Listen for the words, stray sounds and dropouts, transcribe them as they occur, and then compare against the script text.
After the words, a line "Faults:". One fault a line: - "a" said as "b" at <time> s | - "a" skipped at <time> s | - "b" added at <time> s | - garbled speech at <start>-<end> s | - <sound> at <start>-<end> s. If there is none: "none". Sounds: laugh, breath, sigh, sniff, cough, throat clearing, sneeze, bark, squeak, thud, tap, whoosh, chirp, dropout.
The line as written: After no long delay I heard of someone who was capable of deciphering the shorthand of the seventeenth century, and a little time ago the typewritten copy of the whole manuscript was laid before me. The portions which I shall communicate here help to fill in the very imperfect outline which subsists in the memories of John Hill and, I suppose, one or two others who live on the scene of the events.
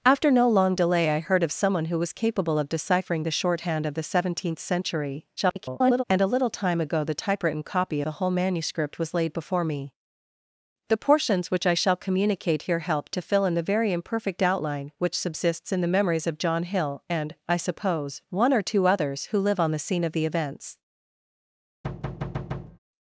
After no long delay I heard of someone who was capable of deciphering the shorthand of the seventeenth century, [garbled] and a little time ago the typewritten copy the whole manuscript was laid before me. The portions which I shall communicate here help to fill in the very imperfect outline which subsists in the memories of John Hill and, I suppose, one or two others who live on the scene of the events.
Faults:
- garbled speech at 5.4-6.0 s
- "of" skipped at 8.0 s
- thud at 21.8-22.8 s